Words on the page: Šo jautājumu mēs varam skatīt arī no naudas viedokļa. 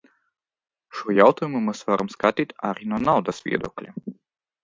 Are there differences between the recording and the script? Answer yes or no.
no